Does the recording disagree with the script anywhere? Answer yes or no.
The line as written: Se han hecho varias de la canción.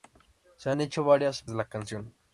no